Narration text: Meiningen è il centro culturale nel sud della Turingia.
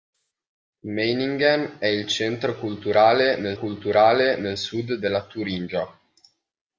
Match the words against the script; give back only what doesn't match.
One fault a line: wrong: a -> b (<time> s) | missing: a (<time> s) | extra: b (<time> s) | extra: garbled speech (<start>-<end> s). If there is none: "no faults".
extra: culturale nel (3.6 s)